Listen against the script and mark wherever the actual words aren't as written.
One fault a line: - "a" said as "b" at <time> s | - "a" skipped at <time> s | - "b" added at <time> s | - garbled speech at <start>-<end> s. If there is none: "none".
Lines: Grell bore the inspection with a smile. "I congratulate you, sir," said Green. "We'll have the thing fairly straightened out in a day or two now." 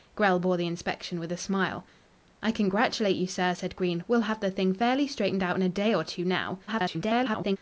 - garbled speech at 6.7-7.6 s